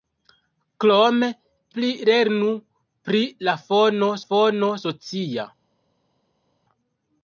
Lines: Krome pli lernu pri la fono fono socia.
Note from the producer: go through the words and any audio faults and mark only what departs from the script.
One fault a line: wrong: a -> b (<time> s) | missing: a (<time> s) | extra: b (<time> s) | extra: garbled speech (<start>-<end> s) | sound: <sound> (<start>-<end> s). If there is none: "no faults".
no faults